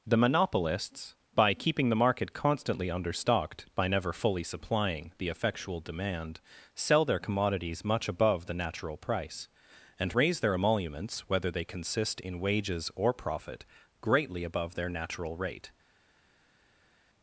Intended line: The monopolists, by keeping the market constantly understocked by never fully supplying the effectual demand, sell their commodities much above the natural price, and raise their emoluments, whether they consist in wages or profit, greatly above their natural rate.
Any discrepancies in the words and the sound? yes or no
no